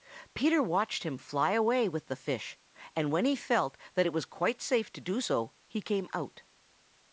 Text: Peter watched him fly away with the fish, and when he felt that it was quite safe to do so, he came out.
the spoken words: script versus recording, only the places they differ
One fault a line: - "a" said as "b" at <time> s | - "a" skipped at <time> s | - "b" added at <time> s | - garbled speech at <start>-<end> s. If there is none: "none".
none